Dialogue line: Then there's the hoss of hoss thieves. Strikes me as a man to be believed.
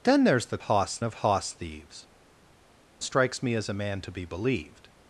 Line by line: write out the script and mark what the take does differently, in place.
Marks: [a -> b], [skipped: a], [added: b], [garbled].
Then there's the hoss of hoss thieves. Strikes me as a man to be believed.